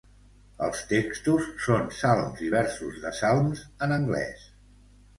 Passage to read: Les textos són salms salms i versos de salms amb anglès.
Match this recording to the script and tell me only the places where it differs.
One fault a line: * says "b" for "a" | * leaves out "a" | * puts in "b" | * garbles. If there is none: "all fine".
* says "Els" for "Les"
* leaves out "salms"
* says "en" for "amb"